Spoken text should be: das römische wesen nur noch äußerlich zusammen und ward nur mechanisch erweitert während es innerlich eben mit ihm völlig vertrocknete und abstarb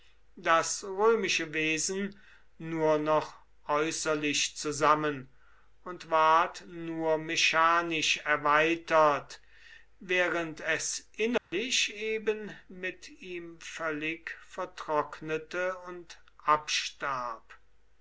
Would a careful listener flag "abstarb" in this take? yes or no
no